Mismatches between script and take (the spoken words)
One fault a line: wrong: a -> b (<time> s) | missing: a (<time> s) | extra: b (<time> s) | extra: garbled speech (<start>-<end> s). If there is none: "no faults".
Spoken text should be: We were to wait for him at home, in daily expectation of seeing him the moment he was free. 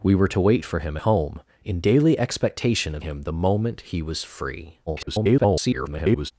missing: at (1.0 s)
missing: seeing (3.0 s)
extra: garbled speech (4.9-6.3 s)